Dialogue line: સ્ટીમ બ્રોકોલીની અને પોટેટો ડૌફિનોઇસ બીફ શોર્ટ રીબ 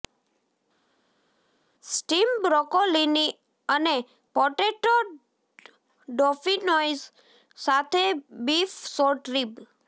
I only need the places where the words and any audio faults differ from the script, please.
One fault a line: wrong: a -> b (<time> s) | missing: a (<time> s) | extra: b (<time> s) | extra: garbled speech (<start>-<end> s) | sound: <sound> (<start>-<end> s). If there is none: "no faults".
extra: સાથે (7.6 s)